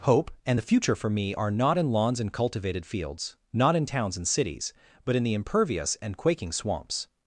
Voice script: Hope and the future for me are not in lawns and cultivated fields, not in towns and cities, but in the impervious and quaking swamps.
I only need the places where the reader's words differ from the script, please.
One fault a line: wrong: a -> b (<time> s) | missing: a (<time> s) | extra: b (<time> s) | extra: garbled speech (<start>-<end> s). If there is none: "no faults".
no faults